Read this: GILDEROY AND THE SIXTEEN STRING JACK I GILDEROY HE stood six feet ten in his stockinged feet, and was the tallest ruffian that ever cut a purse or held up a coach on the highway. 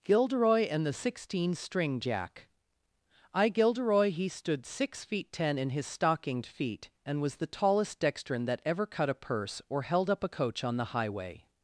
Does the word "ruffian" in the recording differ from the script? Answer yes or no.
yes